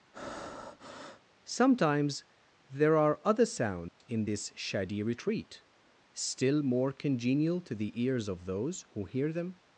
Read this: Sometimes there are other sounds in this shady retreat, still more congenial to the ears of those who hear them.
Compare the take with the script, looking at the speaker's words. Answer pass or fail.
pass